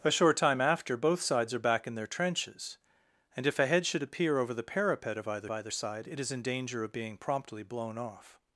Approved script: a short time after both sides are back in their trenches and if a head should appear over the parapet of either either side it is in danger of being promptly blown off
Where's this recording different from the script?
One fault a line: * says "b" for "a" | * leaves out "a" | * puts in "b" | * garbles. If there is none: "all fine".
all fine